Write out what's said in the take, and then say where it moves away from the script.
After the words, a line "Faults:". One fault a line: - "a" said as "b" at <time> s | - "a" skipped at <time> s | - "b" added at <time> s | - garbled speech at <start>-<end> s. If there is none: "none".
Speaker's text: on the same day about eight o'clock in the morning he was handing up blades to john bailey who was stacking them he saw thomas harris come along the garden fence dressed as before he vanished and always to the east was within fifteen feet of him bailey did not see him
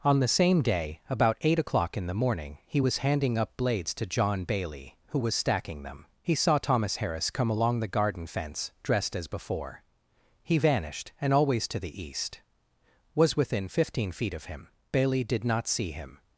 on the same day about eight o'clock in the morning he was handing up blades to john bailey who was stacking them he saw thomas harris come along the garden fence dressed as before he vanished and always to the east was within fifteen feet of him bailey did not see him
Faults:
none